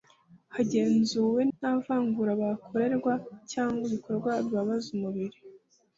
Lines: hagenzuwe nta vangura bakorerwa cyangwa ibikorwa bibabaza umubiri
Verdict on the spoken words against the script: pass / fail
pass